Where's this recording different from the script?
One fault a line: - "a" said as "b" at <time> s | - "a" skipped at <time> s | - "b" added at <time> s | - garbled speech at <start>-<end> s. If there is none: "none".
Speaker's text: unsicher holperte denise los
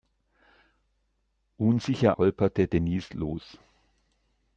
none